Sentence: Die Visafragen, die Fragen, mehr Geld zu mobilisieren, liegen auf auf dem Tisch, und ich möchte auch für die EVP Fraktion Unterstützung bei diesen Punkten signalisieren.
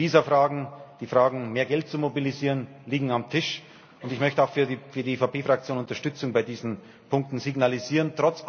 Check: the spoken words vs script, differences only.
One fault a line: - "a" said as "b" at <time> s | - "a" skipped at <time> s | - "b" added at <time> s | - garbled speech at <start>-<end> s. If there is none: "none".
- "auf" skipped at 3.2 s